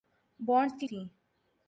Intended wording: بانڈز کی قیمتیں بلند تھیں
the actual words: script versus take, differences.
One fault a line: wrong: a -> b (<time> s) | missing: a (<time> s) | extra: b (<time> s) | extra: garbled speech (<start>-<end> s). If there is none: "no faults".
missing: قیمتیں بلند (0.9 s)